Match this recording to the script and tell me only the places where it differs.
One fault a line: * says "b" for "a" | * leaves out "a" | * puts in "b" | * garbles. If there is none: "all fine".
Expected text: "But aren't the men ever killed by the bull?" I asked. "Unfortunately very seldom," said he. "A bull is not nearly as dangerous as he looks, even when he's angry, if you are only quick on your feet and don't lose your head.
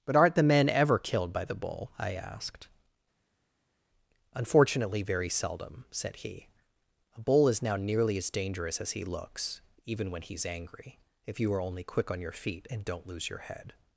* says "now" for "not"